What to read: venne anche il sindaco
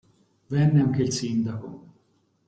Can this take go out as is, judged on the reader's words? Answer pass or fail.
pass